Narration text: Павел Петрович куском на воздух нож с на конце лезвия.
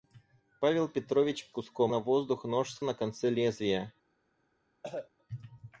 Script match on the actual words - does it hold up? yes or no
yes